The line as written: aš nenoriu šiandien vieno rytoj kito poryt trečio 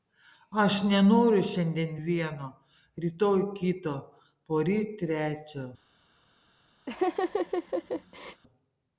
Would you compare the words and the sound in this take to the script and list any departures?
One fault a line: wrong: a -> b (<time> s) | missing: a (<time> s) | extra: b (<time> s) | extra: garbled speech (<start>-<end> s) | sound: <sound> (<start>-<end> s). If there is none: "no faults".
sound: laugh (6.9-8.4 s)